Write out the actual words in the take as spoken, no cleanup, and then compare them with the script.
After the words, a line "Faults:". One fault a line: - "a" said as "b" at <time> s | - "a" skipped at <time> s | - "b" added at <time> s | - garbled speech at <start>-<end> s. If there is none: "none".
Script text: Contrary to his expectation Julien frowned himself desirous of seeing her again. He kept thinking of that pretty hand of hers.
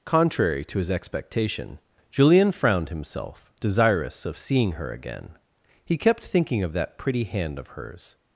Contrary to his expectation Julien frowned himself desirous of seeing her again. He kept thinking of that pretty hand of hers.
Faults:
none